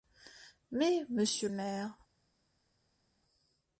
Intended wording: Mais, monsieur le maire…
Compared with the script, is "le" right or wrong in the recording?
wrong